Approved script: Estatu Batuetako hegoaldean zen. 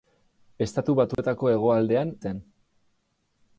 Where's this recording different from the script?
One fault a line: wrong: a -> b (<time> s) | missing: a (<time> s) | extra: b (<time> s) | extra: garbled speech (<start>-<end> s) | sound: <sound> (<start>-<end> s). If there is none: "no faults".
sound: dropout (1.1-1.2 s)